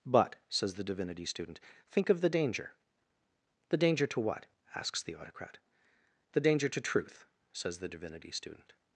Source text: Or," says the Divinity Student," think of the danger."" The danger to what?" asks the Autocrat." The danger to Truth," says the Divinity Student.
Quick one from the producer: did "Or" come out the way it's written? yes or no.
no